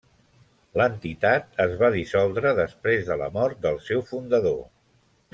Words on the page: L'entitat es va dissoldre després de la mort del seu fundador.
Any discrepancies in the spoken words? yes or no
no